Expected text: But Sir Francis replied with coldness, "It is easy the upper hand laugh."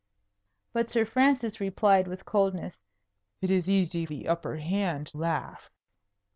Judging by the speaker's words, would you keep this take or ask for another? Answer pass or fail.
pass